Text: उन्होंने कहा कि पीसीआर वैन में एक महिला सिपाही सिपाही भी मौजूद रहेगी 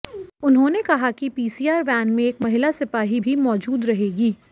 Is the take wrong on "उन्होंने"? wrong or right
right